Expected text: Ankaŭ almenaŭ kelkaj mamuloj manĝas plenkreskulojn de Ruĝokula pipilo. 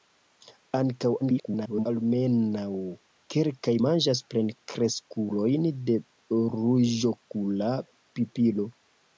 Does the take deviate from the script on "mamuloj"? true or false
true